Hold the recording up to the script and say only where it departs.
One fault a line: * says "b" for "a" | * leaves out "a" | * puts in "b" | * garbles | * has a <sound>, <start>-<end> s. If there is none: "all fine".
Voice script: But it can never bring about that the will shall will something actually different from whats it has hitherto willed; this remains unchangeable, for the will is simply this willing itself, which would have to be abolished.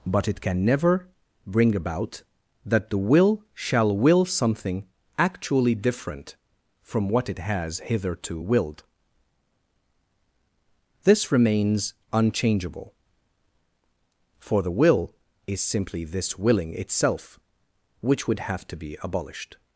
* says "what" for "whats"